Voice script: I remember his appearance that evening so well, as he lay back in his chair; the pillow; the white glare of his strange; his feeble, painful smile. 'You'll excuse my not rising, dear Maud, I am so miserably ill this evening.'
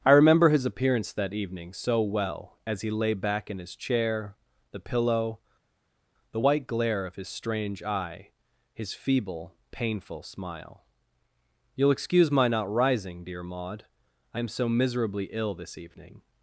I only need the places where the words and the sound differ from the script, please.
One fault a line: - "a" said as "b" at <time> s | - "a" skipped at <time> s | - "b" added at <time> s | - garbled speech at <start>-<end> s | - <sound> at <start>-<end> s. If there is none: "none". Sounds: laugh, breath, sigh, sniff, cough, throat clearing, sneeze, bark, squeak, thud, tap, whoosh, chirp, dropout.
- "eye" added at 7.8 s